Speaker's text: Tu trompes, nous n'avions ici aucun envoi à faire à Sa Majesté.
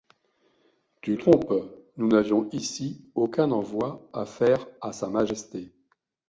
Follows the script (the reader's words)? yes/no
yes